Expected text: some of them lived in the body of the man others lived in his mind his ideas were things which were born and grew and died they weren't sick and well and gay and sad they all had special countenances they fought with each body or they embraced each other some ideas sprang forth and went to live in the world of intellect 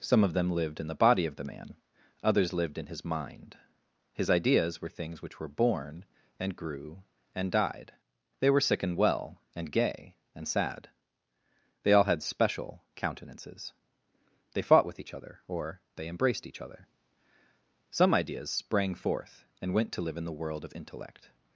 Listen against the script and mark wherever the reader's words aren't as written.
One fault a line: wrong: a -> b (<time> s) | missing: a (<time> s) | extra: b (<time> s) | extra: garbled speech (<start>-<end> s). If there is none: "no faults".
wrong: weren't -> were (8.5 s)
wrong: body -> other (15.1 s)